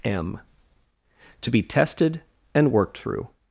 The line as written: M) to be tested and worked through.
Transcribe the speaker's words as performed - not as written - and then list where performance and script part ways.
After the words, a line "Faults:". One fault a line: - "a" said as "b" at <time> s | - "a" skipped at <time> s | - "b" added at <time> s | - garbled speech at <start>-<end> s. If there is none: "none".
M) to be tested and worked through.
Faults:
none